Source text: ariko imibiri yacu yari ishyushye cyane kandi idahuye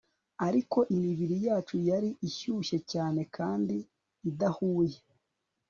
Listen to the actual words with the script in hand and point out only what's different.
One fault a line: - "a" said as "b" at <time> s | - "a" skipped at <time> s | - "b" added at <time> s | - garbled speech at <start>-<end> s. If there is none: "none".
none